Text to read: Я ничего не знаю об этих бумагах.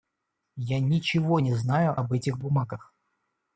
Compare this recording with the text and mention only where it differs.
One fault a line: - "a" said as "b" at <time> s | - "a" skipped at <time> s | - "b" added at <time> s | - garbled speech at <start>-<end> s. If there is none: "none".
none